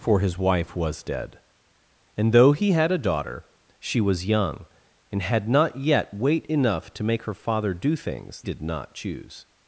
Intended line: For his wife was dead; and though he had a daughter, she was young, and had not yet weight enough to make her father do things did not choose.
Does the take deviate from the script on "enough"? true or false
false